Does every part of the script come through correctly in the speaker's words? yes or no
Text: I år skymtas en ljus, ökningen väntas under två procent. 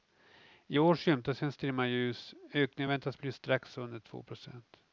no